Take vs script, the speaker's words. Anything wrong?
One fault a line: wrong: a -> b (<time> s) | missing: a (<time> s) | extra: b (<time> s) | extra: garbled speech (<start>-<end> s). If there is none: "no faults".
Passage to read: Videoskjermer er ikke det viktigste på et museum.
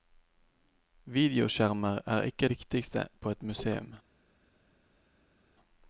missing: det (2.5 s)